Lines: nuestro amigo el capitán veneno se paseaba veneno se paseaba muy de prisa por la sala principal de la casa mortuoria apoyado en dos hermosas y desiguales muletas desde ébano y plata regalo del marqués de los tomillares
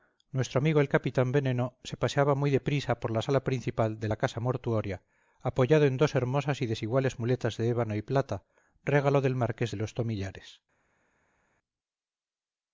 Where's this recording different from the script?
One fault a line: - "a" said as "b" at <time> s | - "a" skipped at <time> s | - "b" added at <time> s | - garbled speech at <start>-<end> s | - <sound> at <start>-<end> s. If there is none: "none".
- "veneno se paseaba" skipped at 2.3 s
- "desde" said as "de" at 7.6 s